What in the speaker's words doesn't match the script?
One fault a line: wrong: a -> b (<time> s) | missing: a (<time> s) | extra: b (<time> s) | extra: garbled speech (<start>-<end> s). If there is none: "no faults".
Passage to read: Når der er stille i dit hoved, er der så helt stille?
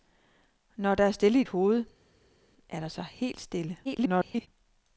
missing: dit (1.4 s)
extra: garbled speech (3.8-4.5 s)